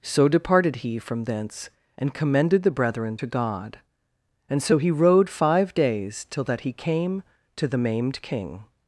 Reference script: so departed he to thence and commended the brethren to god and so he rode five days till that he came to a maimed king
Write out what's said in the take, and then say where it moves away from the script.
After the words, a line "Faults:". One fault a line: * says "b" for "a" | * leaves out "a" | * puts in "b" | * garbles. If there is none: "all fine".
so departed he from thence and commended the brethren to god and so he rode five days till that he came to the maimed king
Faults:
* says "from" for "to"
* says "the" for "a"